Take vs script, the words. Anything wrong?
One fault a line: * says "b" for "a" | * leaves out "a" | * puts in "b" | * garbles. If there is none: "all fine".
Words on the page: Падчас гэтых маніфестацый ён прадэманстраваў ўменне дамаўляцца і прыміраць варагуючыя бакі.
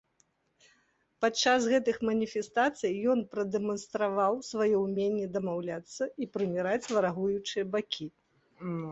* puts in "сваё"